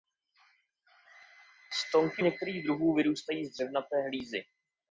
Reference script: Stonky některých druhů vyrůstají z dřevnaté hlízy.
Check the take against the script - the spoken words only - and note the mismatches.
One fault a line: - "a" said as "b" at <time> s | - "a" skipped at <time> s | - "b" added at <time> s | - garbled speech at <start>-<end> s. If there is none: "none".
none